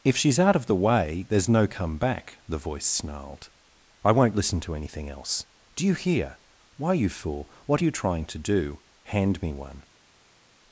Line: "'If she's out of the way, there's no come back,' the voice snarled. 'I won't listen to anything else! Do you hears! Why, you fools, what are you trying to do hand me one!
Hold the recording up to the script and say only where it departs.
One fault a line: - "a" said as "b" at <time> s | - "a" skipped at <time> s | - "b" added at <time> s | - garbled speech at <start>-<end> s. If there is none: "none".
- "hears" said as "hear" at 5.9 s
- "fools" said as "fool" at 7.1 s